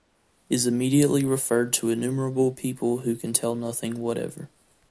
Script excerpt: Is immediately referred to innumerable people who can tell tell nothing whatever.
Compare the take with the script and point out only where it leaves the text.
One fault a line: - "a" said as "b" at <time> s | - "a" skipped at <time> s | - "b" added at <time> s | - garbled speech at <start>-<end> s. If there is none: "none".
- "tell" skipped at 3.5 s